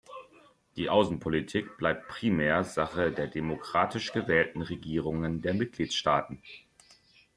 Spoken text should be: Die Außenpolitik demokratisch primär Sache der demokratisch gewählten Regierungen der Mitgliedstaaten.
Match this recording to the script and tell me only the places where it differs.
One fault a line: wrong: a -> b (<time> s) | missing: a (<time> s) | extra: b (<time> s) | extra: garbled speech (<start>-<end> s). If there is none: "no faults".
wrong: demokratisch -> bleibt (1.8 s)